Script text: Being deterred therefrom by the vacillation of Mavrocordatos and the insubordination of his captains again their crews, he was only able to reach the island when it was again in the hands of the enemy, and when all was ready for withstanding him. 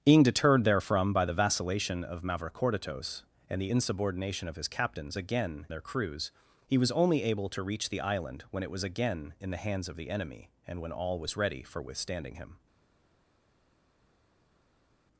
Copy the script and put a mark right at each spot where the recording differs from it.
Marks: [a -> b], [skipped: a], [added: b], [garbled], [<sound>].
Being deterred therefrom by the vacillation of Mavrocordatos and the insubordination of his captains again their crews, he was only able to reach the island when it was again in the hands of the enemy, and when all was ready for withstanding him.